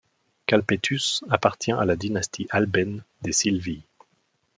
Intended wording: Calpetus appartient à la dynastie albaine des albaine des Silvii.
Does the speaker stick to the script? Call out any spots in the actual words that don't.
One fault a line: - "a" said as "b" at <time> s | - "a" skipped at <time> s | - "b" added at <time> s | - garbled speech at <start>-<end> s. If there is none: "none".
- "albaine des" skipped at 3.3 s